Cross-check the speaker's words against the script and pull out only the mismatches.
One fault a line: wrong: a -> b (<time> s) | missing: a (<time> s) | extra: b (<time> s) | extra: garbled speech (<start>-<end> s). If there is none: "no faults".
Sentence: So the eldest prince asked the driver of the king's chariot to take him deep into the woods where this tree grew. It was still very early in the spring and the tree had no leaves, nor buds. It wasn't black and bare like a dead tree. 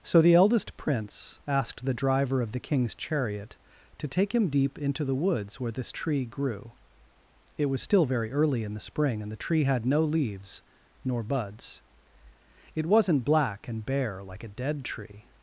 no faults